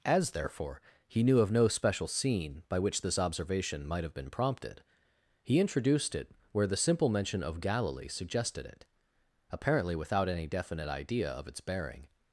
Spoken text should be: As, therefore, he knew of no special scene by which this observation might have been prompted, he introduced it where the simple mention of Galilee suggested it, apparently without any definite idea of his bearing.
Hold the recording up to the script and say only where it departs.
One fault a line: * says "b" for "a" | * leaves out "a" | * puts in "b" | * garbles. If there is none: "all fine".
* says "its" for "his"